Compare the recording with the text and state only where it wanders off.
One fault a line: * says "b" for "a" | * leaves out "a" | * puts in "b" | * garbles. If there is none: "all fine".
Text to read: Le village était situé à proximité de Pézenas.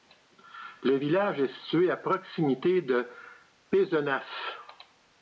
* says "est" for "était"